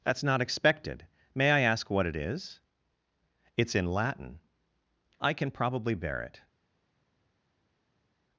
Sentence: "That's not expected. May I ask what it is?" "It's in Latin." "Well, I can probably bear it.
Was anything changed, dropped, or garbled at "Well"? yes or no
yes